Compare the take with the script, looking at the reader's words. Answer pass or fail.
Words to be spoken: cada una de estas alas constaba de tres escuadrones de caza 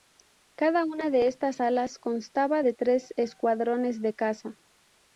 pass